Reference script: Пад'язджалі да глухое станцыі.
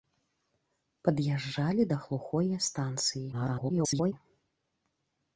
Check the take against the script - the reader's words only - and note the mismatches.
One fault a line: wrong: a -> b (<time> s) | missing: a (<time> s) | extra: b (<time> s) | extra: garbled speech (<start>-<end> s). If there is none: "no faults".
extra: garbled speech (3.3-4.1 s)